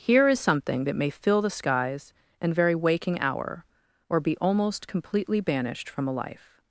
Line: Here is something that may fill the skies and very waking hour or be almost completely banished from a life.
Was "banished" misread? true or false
false